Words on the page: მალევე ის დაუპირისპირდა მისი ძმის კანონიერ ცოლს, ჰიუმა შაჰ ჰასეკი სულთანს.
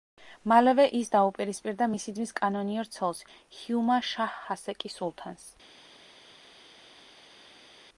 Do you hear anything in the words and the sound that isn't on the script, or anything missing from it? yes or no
no